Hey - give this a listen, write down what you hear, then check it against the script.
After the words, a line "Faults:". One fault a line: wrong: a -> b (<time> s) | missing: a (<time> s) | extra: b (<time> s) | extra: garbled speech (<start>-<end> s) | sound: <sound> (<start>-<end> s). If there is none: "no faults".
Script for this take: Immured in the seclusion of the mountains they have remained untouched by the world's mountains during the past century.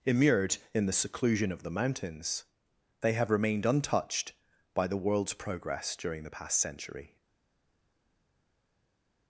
Immured in the seclusion of the mountains they have remained untouched by the world's progress during the past century.
Faults:
wrong: mountains -> progress (5.3 s)